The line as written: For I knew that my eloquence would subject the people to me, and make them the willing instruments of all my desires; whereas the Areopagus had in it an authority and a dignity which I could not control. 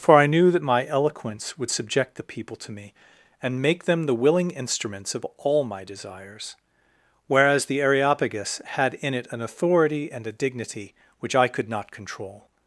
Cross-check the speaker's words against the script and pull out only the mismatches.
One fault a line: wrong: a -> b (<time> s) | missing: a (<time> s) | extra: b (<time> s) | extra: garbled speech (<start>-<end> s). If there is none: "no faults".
no faults